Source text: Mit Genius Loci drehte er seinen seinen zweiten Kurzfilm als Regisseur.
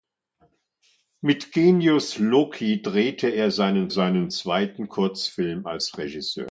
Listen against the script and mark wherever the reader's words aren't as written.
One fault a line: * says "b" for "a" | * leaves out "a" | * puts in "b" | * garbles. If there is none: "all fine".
all fine